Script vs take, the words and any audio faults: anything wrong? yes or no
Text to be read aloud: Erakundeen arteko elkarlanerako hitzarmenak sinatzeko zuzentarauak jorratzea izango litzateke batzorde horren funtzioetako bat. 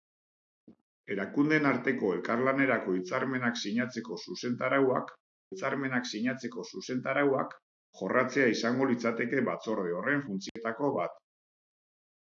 yes